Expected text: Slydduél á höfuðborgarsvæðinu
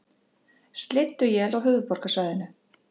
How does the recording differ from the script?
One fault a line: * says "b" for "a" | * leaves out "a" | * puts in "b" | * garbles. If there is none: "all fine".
all fine